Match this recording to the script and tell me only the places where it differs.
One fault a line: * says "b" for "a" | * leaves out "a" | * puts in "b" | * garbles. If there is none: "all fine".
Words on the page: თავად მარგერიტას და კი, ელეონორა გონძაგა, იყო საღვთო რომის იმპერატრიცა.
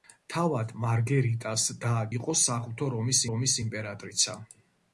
* leaves out "კი ელეონორა გონძაგა"
* puts in "რომის"